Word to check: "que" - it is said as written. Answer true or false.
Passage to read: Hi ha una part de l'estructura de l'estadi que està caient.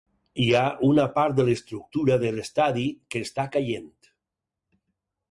true